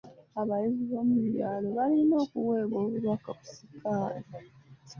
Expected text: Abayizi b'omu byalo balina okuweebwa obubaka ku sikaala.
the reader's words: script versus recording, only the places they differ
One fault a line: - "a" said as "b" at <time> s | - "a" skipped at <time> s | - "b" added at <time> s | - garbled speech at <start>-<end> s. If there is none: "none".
none